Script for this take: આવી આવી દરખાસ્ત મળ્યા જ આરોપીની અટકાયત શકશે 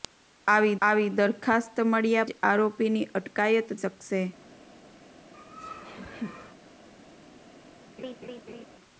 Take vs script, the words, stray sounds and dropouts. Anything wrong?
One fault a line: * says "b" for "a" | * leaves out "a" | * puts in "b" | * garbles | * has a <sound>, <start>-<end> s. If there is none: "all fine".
* has a laugh, 5.3-6.5 s
* has a laugh, 8.0-8.7 s